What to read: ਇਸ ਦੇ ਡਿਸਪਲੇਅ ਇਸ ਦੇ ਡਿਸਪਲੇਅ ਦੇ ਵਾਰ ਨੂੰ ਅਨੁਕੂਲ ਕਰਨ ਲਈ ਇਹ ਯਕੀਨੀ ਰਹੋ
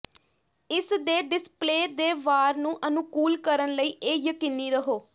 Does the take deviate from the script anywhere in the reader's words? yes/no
yes